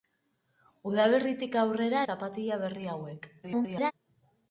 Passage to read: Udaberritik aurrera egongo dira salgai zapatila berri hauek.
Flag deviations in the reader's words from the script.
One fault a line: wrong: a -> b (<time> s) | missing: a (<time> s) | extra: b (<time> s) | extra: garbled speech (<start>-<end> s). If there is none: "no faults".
missing: egongo dira salgai (2.0 s)
extra: garbled speech (3.4-3.9 s)